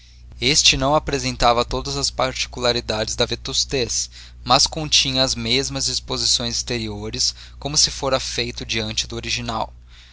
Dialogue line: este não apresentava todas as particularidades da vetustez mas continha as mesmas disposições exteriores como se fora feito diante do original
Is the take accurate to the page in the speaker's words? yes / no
yes